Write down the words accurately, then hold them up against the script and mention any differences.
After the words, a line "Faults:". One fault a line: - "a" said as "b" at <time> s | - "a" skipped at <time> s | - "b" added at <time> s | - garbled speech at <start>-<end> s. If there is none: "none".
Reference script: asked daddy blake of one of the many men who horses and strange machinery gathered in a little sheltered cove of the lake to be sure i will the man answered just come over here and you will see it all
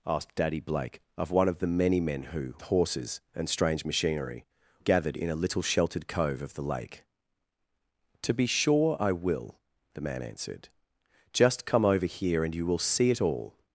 asked daddy blake of one of the many men who horses and strange machinery gathered in a little sheltered cove of the lake to be sure i will the man answered just come over here and you will see it all
Faults:
none